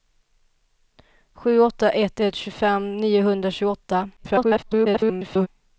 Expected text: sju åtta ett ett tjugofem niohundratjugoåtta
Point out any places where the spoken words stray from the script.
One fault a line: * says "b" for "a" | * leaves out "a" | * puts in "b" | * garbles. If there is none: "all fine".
* garbles